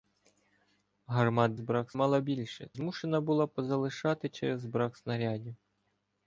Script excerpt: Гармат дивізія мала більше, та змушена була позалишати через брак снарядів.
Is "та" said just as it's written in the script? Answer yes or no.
no